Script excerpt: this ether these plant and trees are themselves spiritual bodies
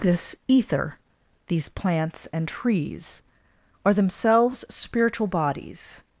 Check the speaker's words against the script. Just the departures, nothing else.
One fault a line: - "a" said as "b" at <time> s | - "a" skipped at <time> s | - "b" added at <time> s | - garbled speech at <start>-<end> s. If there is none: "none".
- "plant" said as "plants" at 1.7 s